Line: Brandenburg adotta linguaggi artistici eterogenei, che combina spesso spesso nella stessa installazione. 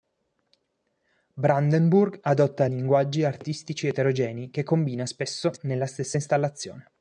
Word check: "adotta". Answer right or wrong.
right